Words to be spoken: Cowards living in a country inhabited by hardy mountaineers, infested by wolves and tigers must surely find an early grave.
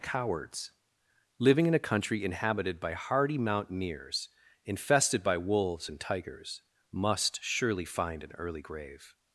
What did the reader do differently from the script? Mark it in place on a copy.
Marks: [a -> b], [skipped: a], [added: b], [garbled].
Cowards living in a country inhabited by hardy mountaineers, infested by wolves and tigers must surely find an early grave.